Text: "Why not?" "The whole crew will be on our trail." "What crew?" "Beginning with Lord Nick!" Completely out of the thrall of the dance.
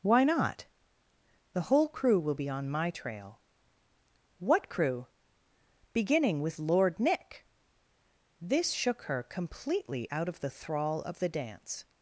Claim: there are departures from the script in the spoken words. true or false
true